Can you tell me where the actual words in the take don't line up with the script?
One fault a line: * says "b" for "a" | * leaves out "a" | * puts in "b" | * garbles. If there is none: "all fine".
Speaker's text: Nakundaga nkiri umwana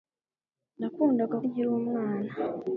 all fine